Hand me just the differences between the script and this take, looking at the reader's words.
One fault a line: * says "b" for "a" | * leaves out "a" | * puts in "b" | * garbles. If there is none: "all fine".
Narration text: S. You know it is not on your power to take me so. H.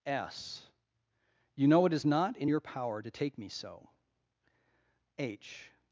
* says "in" for "on"